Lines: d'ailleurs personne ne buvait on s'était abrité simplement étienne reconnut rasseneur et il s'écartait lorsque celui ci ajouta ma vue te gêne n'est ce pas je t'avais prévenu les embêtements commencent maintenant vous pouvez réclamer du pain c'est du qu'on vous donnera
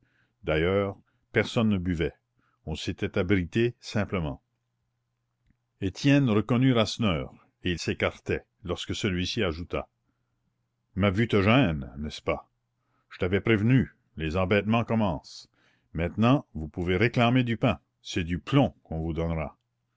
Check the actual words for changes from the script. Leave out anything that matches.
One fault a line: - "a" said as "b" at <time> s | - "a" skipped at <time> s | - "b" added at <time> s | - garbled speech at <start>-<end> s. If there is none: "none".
- "plomb" added at 18.4 s